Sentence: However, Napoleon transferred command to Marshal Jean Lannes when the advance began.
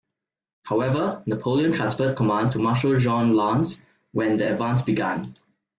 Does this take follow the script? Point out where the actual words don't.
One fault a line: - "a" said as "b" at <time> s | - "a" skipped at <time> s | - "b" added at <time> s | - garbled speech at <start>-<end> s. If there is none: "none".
none